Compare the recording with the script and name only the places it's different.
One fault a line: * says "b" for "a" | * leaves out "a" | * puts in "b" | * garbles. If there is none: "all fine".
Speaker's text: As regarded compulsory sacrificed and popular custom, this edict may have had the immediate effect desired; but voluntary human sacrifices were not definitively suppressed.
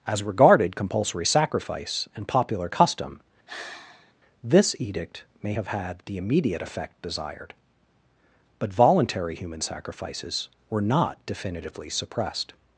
* says "sacrifice" for "sacrificed"